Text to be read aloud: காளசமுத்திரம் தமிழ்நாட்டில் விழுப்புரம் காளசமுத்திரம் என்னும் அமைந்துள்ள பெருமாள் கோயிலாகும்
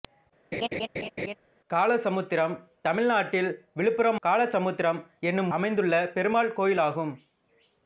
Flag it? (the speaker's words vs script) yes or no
no